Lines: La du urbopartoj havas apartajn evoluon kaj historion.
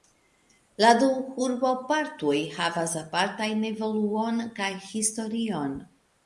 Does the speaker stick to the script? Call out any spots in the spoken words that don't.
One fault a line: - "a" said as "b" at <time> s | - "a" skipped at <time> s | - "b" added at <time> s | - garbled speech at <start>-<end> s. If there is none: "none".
none